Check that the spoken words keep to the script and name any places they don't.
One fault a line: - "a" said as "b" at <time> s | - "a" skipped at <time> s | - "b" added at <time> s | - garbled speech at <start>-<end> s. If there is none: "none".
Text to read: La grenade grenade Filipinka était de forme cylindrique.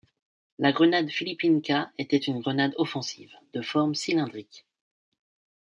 - "grenade" skipped at 1.1 s
- "une grenade offensive" added at 2.2 s